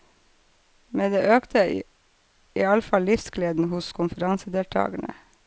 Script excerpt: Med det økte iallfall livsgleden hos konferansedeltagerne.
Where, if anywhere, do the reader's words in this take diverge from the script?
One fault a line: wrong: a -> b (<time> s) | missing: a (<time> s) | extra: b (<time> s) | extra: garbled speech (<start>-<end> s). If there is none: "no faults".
no faults